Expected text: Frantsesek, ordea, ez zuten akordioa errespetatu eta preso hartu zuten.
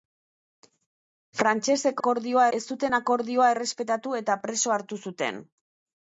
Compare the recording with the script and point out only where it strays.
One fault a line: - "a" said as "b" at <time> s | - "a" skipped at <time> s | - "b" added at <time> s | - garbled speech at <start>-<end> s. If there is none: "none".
- "ordea" said as "akordioa" at 2.0 s